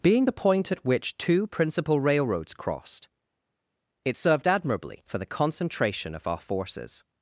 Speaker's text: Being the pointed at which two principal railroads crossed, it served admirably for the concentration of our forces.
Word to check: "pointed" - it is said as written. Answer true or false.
false